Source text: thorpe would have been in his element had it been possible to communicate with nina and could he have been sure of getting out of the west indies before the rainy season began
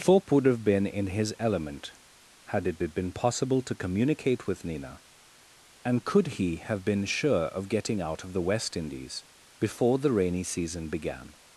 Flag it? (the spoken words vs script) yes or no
yes